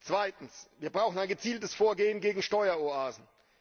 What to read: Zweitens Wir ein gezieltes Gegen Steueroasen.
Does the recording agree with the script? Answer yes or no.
no